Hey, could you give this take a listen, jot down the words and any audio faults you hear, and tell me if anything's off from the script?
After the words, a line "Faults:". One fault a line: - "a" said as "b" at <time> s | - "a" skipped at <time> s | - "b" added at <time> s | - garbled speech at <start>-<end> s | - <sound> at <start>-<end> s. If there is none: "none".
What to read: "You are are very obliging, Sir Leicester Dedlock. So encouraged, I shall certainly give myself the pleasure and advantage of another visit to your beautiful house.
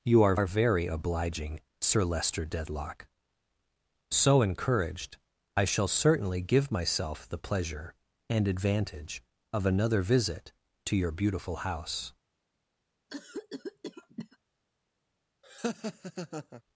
"You are are very obliging, Sir Leicester Dedlock. So encouraged, I shall certainly give myself the pleasure and advantage of another visit to your beautiful house.
Faults:
- cough at 13.1-14.4 s
- laugh at 15.4-16.6 s